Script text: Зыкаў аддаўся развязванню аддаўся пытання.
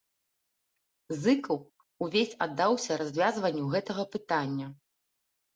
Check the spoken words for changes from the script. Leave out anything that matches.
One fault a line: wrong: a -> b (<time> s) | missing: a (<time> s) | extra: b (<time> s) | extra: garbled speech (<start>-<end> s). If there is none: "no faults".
extra: увесь (2.0 s)
wrong: аддаўся -> гэтага (3.8 s)